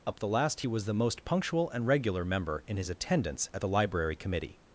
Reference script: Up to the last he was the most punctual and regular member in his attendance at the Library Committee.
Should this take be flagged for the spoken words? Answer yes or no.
yes